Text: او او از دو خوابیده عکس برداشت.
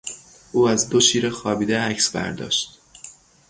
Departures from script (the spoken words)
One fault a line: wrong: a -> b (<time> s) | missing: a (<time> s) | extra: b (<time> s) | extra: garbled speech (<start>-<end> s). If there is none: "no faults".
missing: او (0.7 s)
extra: شیر (1.0 s)